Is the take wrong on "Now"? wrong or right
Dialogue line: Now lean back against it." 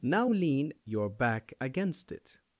right